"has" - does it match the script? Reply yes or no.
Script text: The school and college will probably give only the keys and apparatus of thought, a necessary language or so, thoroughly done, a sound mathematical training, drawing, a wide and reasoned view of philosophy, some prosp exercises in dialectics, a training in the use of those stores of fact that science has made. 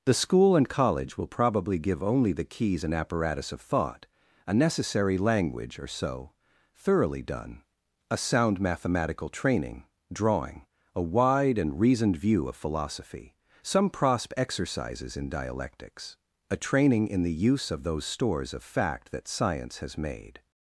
yes